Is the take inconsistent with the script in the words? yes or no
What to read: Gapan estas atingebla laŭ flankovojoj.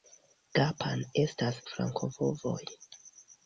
yes